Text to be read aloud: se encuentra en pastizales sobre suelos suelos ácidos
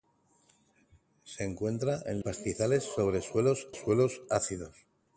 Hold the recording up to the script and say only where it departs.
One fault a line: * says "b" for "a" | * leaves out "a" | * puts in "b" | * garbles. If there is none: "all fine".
all fine